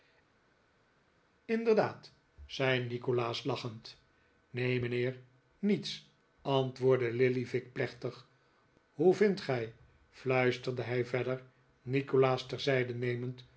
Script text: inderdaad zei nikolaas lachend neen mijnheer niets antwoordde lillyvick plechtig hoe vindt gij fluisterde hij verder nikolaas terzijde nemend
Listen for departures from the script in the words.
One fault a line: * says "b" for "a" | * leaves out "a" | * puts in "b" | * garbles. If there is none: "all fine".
all fine